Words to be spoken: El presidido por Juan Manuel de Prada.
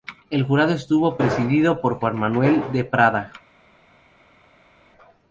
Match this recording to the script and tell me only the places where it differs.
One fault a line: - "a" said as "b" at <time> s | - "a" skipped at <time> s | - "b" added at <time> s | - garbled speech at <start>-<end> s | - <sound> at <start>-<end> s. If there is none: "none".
- "jurado estuvo" added at 0.5 s